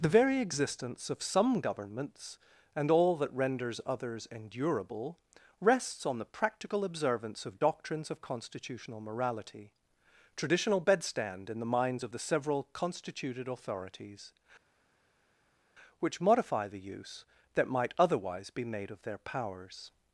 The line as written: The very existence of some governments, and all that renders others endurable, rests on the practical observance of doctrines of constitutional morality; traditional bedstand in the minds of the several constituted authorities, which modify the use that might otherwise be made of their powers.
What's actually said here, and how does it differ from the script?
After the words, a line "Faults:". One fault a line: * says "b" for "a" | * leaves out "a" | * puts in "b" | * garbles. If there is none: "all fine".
The very existence of some governments, and all that renders others endurable, rests on the practical observance of doctrines of constitutional morality; traditional bedstand in the minds of the several constituted authorities, which modify the use that might otherwise be made of their powers.
Faults:
all fine